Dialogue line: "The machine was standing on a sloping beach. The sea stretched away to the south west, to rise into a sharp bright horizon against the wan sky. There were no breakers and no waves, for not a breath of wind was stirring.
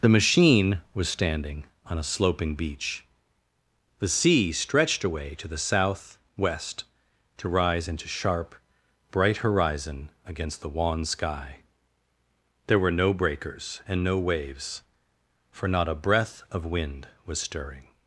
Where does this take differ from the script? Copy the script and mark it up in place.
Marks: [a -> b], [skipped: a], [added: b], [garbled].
"The machine was standing on a sloping beach. The sea stretched away to the south west, to rise into [skipped: a] sharp bright horizon against the wan sky. There were no breakers and no waves, for not a breath of wind was stirring.